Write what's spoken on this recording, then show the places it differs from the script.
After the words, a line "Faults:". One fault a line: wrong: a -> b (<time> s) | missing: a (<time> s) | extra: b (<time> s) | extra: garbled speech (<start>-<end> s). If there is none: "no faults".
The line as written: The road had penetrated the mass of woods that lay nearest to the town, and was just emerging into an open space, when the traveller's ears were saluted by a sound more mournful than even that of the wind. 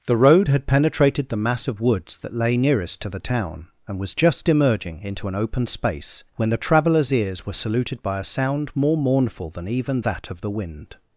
The road had penetrated the mass of woods that lay nearest to the town, and was just emerging into an open space, when the traveller's ears were saluted by a sound more mournful than even that of the wind.
Faults:
no faults